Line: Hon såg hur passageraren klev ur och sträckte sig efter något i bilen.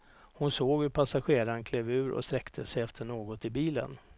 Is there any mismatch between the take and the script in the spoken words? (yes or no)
no